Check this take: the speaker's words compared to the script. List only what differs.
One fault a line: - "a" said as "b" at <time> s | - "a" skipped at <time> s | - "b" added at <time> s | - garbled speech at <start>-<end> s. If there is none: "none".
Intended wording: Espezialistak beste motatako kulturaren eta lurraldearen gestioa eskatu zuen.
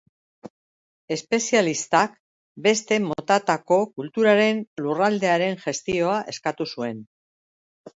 - "eta" skipped at 4.6 s